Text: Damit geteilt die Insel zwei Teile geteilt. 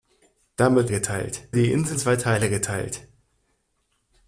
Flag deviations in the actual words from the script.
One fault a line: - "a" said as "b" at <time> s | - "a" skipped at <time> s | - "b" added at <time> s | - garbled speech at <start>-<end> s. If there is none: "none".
none